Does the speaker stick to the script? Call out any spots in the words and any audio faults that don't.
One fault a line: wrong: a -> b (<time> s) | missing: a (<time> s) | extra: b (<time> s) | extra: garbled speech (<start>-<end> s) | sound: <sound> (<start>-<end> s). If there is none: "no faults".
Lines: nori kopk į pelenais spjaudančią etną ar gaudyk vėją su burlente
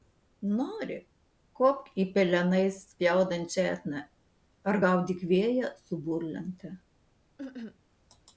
sound: cough (7.4-7.8 s)